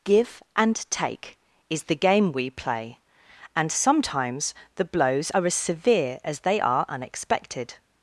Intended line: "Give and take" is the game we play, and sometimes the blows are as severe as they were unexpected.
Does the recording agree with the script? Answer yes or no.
no